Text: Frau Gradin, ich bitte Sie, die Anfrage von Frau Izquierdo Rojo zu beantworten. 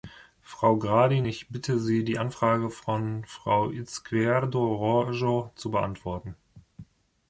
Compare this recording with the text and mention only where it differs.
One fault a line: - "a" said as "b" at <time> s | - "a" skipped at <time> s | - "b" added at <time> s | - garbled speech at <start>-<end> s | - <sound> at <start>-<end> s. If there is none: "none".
none